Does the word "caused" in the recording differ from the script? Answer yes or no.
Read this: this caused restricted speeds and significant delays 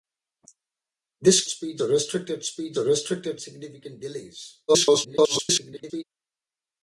yes